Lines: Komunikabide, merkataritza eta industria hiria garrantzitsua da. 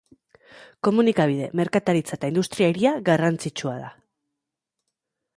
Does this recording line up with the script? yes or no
yes